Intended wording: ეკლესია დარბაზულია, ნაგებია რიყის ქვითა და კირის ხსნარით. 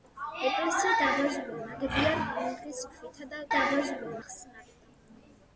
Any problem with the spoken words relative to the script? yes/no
yes